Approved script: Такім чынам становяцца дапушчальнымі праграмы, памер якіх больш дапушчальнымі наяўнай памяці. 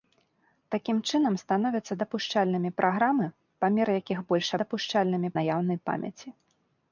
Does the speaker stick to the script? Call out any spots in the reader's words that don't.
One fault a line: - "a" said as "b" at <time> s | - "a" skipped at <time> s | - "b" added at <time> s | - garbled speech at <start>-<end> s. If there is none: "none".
none